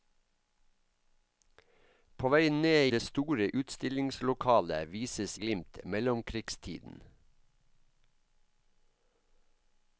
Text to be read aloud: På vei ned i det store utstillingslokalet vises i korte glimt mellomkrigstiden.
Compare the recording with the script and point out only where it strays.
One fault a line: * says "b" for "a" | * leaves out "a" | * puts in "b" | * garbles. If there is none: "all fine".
* leaves out "i"
* leaves out "i korte"